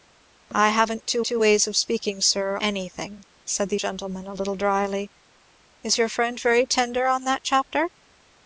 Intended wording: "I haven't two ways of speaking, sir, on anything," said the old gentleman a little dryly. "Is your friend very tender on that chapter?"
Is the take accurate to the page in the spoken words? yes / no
no